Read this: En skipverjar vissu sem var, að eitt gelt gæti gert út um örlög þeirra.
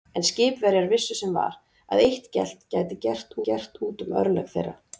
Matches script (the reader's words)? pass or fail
fail